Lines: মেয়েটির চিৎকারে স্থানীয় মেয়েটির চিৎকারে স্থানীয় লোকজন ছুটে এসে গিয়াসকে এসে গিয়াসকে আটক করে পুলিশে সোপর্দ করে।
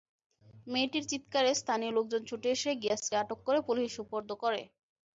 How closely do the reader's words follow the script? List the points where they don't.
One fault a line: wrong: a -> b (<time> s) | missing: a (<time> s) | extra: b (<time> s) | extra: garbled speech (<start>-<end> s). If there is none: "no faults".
missing: মেয়েটির চিৎকারে স্থানীয় (1.9 s)
missing: এসে গিয়াসকে (3.1 s)